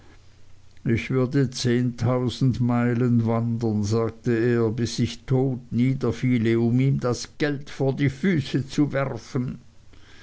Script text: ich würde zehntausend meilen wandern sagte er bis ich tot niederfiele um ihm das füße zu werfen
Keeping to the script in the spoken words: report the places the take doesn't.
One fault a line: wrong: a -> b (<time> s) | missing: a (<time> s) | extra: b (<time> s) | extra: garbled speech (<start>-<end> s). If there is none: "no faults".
extra: geld vor die (7.4 s)